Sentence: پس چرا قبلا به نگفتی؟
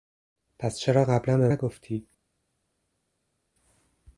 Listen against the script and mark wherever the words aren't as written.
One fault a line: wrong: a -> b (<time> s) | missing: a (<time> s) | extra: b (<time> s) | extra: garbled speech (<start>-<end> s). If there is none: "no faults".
no faults